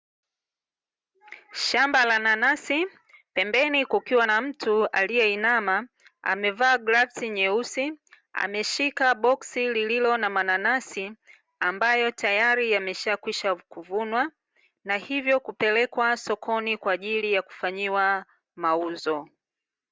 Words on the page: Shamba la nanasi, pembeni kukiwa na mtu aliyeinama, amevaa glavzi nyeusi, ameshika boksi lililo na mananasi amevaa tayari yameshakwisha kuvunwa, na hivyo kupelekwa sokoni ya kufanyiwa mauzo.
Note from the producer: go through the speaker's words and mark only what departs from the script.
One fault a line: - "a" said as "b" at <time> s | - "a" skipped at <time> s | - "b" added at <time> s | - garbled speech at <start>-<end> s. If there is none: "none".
- "amevaa" said as "ambayo" at 11.6 s
- "kwa ajili" added at 16.8 s